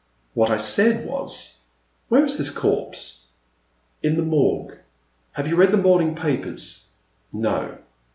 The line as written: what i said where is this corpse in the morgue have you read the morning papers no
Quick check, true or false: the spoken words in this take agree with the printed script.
false